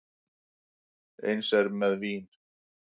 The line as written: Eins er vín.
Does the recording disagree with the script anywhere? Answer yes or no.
yes